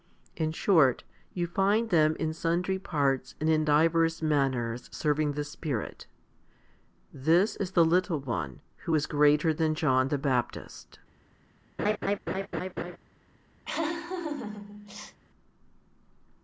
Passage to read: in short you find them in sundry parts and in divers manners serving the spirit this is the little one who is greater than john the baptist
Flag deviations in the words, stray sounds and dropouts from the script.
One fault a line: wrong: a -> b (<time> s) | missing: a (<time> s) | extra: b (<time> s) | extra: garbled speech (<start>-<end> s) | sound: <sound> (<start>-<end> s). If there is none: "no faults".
sound: laugh (11.8-13.0 s)
sound: laugh (13.6-15.2 s)